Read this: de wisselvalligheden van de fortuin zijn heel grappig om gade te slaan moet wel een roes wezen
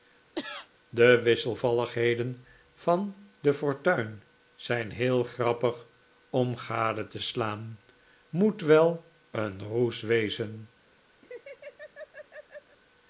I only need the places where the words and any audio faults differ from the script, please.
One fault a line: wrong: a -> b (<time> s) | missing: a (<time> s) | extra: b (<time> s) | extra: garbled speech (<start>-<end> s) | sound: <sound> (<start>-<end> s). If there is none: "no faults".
sound: cough (0.4-0.7 s)
sound: laugh (11.2-12.8 s)